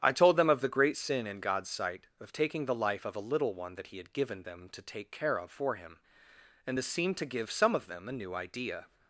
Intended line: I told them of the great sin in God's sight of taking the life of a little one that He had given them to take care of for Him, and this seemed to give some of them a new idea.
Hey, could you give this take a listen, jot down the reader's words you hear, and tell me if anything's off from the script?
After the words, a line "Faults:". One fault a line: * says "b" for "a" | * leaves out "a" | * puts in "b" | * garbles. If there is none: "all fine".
I told them of the great sin in God's sight of taking the life of a little one that He had given them to take care of for Him, and this seemed to give some of them a new idea.
Faults:
all fine